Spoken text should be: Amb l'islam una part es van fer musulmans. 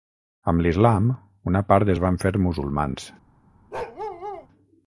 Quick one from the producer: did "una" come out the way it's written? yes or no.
yes